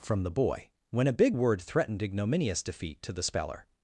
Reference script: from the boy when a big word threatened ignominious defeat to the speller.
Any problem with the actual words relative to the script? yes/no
no